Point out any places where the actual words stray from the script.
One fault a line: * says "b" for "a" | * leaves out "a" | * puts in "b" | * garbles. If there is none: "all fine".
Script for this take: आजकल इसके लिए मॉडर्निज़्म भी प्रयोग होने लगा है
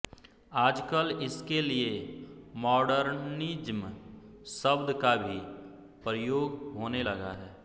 * puts in "शब्द का"